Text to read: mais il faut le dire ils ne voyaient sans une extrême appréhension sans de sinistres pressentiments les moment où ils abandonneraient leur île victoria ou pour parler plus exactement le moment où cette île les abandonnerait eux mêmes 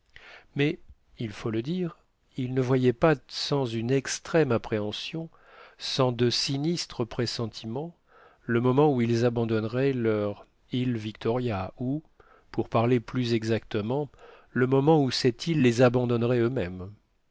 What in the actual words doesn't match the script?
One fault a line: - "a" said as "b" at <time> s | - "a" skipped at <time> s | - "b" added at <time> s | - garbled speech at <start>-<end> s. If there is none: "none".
- "pas" added at 2.9 s
- "les" said as "le" at 8.4 s